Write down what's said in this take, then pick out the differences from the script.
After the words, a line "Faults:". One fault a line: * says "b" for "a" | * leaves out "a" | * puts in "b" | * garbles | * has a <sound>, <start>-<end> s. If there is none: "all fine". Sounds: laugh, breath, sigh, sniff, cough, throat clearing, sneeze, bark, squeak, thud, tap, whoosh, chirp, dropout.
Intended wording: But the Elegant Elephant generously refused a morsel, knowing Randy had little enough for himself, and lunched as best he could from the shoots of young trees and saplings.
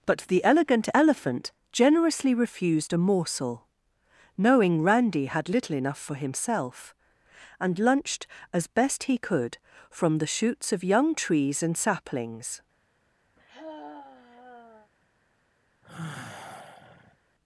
But the Elegant Elephant generously refused a morsel, knowing Randy had little enough for himself, and lunched as best he could from the shoots of young trees and saplings.
Faults:
* has a sigh, 13.4-14.9 s
* has a sigh, 15.8-17.2 s